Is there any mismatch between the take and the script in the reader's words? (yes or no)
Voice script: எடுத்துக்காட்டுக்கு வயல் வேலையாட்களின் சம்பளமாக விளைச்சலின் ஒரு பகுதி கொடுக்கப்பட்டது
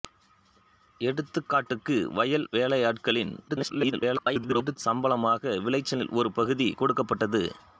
yes